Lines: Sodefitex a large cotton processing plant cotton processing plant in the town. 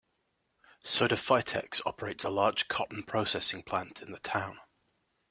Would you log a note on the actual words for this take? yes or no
yes